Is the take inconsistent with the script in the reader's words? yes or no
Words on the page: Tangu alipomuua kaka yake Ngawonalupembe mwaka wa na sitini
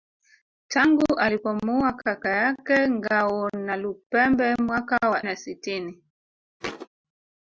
no